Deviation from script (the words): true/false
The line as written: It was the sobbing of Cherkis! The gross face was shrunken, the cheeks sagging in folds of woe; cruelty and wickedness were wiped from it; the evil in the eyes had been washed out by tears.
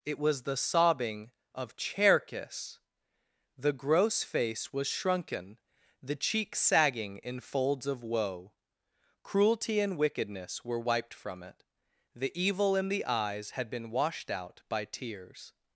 false